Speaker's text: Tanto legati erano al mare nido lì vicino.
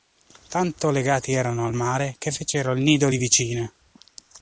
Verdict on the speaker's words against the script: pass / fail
fail